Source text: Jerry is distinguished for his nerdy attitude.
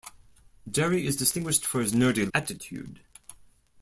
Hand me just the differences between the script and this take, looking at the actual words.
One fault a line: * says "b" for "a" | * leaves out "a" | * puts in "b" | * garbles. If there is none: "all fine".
all fine